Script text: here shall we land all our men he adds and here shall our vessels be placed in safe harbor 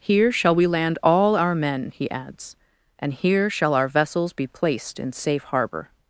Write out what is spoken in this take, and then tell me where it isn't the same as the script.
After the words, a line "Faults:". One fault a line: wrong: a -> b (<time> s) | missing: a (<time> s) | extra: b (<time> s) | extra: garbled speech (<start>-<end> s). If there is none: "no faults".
here shall we land all our men he adds and here shall our vessels be placed in safe harbor
Faults:
no faults